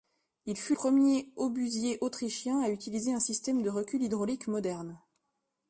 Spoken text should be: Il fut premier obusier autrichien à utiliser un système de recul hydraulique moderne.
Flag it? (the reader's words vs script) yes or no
no